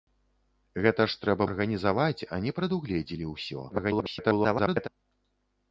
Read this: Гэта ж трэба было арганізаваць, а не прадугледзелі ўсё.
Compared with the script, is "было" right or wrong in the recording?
wrong